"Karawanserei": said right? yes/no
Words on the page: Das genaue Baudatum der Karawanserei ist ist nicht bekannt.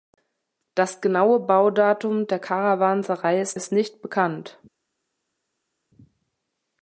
yes